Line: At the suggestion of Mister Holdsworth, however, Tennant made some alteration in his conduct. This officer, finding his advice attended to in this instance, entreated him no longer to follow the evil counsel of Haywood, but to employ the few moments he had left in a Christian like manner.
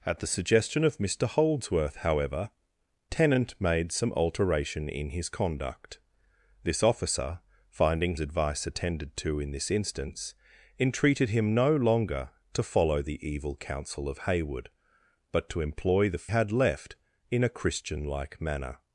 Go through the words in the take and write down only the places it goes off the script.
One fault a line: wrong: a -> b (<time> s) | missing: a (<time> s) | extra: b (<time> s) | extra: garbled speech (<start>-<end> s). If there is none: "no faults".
missing: his (8.2 s)
missing: few moments he (16.3 s)